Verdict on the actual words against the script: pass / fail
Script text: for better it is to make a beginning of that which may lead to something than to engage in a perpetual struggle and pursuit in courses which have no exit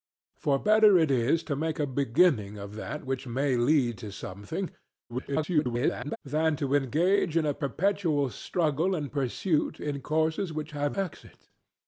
fail